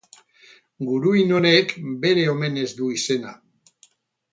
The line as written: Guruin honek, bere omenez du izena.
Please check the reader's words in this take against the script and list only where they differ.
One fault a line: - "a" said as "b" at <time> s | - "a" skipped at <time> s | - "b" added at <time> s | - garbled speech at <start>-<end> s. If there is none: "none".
none